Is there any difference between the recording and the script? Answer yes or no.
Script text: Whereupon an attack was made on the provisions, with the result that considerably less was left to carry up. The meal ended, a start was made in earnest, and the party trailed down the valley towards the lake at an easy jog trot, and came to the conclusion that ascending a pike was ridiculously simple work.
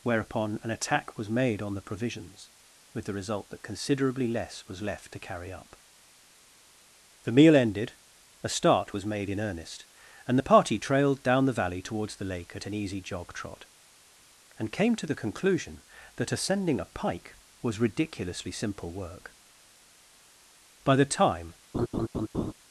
yes